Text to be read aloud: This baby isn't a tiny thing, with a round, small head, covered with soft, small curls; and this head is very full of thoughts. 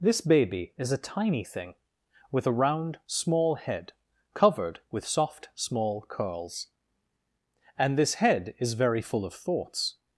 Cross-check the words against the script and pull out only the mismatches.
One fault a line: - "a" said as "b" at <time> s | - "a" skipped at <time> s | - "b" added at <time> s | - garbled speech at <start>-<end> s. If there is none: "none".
- "isn't" said as "is" at 0.8 s